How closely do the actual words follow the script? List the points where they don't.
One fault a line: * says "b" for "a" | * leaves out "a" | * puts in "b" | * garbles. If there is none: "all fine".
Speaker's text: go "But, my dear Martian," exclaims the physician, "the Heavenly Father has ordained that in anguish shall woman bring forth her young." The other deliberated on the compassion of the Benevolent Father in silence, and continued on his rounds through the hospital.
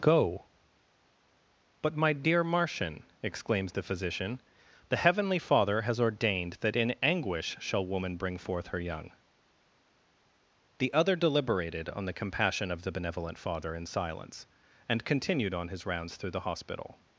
all fine